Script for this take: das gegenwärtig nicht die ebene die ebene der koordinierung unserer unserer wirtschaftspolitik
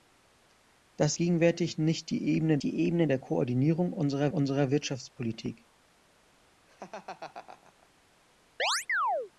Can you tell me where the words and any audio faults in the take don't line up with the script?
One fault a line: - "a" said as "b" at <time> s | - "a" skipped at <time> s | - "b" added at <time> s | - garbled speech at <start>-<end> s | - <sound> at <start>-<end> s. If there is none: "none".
- laugh at 6.7-7.9 s
- chirp at 8.6-9.3 s